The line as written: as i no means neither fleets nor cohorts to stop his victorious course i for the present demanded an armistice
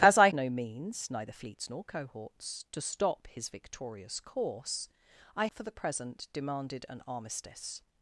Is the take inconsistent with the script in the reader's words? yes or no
no